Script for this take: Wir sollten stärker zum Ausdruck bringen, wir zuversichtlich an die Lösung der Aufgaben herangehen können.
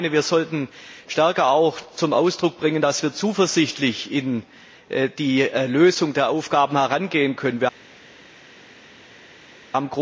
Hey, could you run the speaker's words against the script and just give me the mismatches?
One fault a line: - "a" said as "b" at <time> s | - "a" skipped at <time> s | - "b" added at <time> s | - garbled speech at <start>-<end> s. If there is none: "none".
- "dass" added at 2.8 s